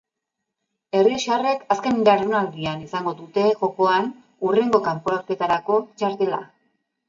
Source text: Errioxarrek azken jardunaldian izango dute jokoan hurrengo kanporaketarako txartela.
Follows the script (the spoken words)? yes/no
yes